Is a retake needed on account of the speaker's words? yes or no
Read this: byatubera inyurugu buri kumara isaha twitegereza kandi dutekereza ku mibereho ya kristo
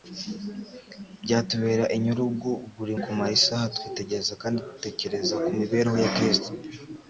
no